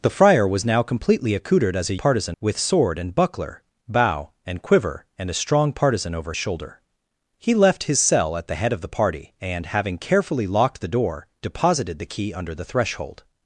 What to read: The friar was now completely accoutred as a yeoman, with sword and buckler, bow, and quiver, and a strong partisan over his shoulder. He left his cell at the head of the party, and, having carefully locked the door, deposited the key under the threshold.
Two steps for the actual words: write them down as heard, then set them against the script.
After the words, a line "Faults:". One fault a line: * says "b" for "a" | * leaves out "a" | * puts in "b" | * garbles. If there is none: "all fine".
The friar was now completely accoutred as a partisan, with sword and buckler, bow, and quiver, and a strong partisan over shoulder. He left his cell at the head of the party, and, having carefully locked the door, deposited the key under the threshold.
Faults:
* says "partisan" for "yeoman"
* leaves out "his"